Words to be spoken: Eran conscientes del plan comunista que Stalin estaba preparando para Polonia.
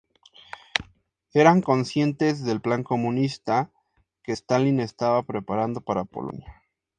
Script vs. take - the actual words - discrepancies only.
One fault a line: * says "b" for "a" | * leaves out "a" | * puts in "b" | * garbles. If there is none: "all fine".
all fine